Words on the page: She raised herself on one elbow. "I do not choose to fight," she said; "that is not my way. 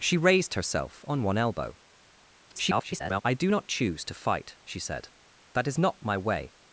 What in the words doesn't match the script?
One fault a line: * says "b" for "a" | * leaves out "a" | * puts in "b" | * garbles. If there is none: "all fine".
* garbles